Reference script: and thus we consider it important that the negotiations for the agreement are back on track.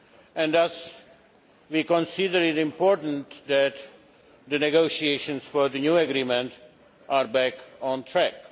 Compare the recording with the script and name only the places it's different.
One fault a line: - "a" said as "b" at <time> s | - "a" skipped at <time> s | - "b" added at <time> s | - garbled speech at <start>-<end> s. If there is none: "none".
- "new" added at 5.8 s